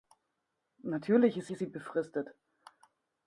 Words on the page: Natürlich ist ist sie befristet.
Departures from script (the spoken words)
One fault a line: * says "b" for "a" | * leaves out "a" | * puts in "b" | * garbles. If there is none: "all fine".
all fine